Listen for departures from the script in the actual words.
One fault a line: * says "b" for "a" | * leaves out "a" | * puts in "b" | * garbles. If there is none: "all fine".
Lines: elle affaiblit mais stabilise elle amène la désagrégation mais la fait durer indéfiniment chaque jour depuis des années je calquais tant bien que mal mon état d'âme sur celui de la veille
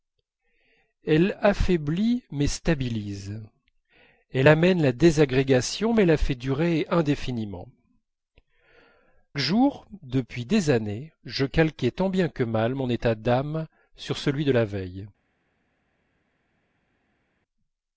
* leaves out "chaque"